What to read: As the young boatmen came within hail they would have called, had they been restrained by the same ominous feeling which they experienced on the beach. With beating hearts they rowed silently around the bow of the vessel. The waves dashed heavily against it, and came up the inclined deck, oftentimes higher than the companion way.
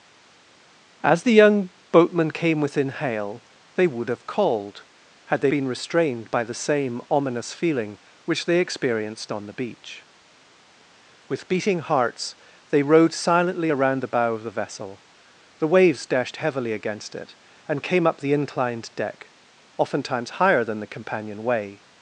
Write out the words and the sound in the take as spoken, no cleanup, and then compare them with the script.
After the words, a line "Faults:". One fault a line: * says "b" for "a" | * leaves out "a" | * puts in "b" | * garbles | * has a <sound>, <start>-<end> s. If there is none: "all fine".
As the young boatmen came within hail they would have called, had they been restrained by the same ominous feeling which they experienced on the beach. With beating hearts they rowed silently around the bow of the vessel. The waves dashed heavily against it, and came up the inclined deck, oftentimes higher than the companion way.
Faults:
all fine